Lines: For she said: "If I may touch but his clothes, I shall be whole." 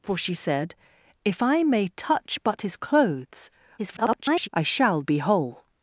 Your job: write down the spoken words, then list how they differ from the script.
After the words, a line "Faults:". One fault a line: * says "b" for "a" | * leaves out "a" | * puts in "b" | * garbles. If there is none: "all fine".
For she said: "If I may touch but his clothes, [garbled] I shall be whole."
Faults:
* garbles